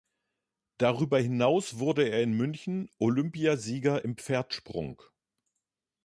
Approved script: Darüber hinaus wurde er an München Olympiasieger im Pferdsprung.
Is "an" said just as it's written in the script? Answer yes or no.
no